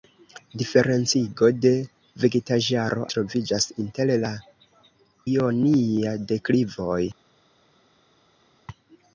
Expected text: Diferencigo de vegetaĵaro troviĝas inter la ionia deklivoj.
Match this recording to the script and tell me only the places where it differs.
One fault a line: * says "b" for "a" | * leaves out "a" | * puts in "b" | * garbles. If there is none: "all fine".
all fine